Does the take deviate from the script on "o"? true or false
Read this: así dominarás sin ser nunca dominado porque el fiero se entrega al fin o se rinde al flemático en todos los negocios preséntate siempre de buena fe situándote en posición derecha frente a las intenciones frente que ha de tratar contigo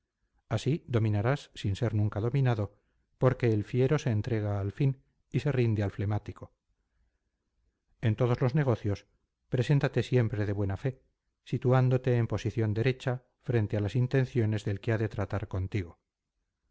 true